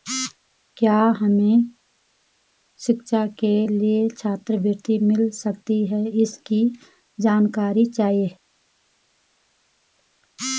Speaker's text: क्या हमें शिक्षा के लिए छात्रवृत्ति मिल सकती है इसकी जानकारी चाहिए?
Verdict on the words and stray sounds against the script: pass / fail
pass